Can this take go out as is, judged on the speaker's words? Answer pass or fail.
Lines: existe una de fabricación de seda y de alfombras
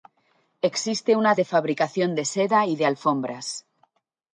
pass